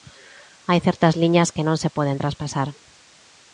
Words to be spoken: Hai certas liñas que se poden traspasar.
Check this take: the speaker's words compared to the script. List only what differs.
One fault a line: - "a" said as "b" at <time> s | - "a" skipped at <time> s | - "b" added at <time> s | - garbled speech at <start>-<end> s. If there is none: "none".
- "non" added at 1.7 s